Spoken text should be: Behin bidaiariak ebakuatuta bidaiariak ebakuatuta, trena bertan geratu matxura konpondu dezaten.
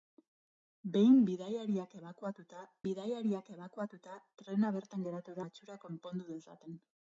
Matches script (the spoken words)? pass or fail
pass